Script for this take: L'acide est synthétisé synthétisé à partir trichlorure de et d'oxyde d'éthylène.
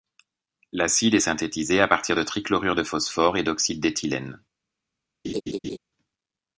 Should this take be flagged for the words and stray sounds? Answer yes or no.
yes